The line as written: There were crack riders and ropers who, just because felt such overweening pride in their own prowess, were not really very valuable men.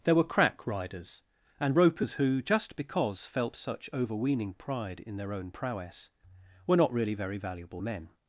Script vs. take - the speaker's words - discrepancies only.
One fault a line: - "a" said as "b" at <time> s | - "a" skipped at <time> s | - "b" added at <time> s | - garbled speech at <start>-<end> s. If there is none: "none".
none